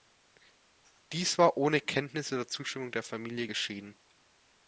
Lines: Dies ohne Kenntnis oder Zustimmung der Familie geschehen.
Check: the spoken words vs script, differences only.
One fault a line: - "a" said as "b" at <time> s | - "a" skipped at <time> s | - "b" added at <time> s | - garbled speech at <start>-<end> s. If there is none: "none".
- "war" added at 1.4 s